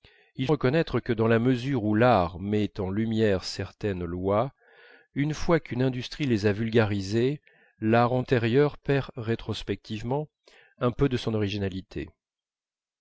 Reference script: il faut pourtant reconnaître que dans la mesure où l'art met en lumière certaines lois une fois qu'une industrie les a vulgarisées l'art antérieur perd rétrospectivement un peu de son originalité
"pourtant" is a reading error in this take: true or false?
true